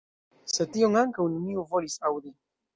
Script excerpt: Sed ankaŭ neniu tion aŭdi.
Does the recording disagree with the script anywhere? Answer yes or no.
yes